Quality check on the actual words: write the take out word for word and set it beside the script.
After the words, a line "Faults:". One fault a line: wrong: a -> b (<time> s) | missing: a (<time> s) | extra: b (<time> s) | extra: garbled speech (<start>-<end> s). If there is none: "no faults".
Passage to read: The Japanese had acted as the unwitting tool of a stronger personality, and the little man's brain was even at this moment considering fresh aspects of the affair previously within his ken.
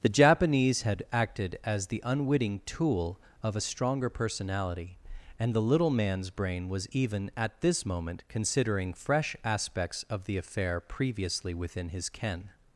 The Japanese had acted as the unwitting tool of a stronger personality, and the little man's brain was even at this moment considering fresh aspects of the affair previously within his ken.
Faults:
no faults